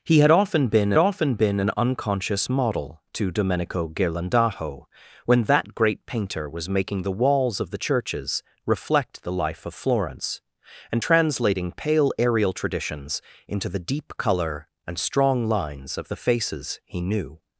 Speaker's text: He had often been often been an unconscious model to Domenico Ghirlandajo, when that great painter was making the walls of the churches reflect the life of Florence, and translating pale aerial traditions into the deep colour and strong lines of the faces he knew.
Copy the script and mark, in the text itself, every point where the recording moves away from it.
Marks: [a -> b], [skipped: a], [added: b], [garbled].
He had often been often been an unconscious model to Domenico Ghirlandajo, when that great painter was making the walls of the churches reflect the life of Florence, and translating pale aerial traditions into the deep colour and strong lines of the faces he knew.